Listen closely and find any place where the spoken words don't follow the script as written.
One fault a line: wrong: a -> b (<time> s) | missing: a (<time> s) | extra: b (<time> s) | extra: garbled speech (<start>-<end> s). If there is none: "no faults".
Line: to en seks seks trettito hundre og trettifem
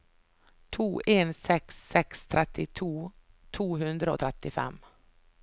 extra: to (3.6 s)